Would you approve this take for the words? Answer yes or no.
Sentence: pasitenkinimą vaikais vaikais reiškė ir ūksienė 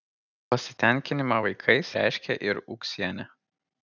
no